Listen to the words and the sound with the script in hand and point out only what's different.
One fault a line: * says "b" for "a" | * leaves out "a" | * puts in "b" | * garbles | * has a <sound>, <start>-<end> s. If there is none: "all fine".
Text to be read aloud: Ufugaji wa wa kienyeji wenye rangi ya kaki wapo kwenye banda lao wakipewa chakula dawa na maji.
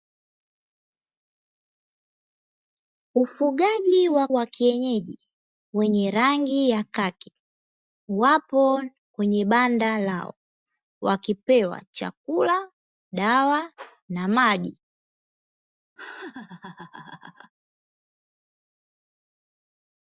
* has a laugh, 16.0-17.5 s